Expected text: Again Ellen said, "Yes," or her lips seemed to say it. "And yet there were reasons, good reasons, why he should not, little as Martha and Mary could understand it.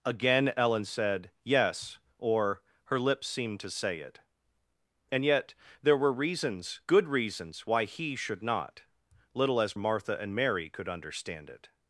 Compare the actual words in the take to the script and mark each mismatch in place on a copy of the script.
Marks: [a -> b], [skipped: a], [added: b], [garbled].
Again Ellen said, "Yes," or her lips seemed to say it. "And yet there were reasons, good reasons, why he should not, little as Martha and Mary could understand it.